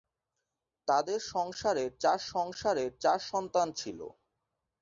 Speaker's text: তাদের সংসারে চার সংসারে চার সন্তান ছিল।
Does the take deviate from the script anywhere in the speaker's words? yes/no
no